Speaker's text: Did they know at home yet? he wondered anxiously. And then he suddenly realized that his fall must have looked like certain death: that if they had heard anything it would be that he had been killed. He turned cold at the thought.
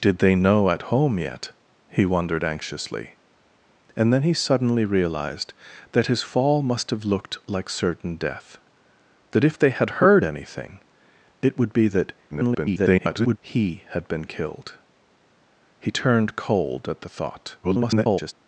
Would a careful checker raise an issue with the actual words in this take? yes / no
yes